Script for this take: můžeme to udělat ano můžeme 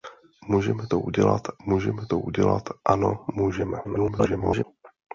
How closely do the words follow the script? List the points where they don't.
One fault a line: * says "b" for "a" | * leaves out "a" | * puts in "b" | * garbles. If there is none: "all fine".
* puts in "můžeme to udělat"
* garbles